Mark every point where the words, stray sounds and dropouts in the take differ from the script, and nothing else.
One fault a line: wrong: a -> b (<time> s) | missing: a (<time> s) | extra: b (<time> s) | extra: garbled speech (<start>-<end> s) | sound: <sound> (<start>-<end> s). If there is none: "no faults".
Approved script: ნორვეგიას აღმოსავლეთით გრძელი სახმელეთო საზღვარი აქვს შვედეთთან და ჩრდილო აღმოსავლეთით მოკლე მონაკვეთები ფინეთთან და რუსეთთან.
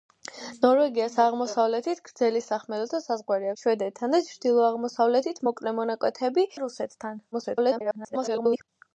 missing: აქვს (3.5 s)
missing: ფინეთთან (6.5 s)
extra: garbled speech (7.3-8.7 s)